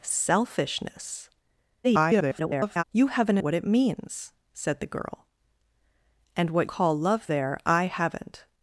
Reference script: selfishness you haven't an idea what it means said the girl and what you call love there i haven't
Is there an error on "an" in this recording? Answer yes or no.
yes